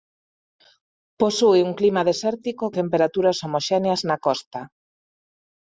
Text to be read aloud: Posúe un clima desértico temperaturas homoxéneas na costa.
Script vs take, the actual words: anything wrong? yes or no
no